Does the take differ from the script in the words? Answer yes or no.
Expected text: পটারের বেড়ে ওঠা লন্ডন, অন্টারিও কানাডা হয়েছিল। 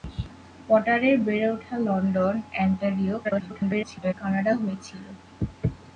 yes